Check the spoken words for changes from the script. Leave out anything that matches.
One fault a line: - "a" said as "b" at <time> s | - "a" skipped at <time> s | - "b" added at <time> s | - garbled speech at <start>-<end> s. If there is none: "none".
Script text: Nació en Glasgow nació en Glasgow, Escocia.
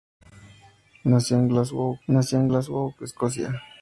none